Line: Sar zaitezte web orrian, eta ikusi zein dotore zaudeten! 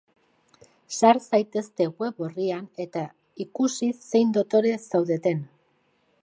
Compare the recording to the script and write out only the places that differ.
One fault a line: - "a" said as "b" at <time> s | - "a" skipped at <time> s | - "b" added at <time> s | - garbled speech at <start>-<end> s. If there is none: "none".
none